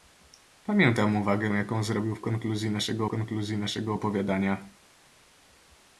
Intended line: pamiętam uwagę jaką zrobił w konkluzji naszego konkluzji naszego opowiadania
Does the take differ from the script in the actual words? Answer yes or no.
no